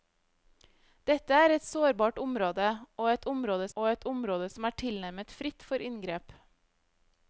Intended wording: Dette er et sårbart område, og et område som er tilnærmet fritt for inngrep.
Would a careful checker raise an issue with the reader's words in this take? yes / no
yes